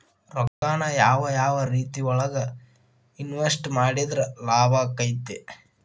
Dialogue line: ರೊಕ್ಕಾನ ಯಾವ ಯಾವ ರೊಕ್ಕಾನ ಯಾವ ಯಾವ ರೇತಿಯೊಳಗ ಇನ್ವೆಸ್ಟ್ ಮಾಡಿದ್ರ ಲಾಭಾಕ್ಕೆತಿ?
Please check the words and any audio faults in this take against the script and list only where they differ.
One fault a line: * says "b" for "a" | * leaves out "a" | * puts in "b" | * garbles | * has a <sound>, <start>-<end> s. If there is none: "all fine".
* has a dropout, 0.5-0.6 s
* leaves out "ರೊಕ್ಕಾನ ಯಾವ ಯಾವ"